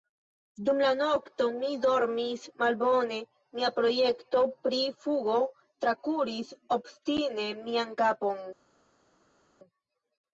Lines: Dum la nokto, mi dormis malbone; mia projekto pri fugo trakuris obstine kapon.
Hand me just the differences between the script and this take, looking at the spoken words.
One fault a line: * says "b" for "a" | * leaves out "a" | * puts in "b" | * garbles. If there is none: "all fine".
* puts in "mian"